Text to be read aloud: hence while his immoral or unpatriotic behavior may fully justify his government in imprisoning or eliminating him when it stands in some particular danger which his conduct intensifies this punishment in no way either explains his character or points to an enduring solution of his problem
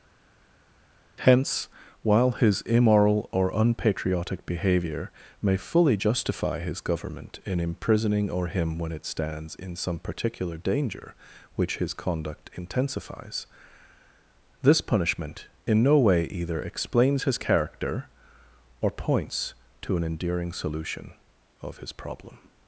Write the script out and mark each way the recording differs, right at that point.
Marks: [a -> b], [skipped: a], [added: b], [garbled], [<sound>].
hence while his immoral or unpatriotic behavior may fully justify his government in imprisoning or [skipped: eliminating] him when it stands in some particular danger which his conduct intensifies this punishment in no way either explains his character or points to an enduring solution of his problem